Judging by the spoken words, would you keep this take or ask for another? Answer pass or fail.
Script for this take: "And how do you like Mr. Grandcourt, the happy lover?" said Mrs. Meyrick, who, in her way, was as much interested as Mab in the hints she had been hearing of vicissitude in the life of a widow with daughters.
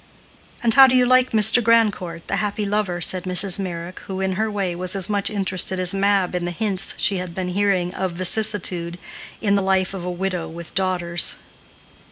pass